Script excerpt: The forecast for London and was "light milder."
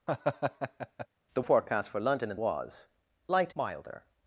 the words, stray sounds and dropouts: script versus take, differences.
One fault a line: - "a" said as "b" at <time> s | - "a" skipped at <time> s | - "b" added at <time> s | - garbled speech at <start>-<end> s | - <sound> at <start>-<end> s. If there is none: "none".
- laugh at 0.1-1.1 s